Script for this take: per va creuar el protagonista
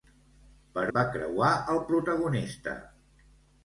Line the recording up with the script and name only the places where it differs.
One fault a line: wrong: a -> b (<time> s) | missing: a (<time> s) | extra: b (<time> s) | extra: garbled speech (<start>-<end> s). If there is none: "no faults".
no faults